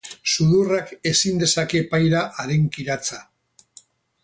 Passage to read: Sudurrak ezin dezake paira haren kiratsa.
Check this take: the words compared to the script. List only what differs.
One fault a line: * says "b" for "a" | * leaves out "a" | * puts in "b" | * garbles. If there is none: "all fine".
all fine